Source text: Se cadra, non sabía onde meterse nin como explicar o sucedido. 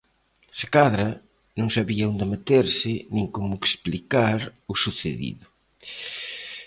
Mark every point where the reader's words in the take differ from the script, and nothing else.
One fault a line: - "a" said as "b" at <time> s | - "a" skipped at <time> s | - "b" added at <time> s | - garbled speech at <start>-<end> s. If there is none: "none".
none